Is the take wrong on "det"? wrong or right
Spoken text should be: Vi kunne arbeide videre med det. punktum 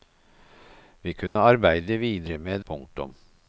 wrong